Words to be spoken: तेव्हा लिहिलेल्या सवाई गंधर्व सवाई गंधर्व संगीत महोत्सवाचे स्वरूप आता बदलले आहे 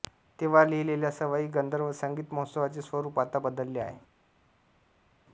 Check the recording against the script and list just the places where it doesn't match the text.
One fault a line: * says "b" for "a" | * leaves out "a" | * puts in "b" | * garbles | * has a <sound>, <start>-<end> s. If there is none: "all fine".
* leaves out "सवाई गंधर्व"